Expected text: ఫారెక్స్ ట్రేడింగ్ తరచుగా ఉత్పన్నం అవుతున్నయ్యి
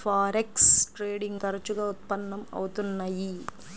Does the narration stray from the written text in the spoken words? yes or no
no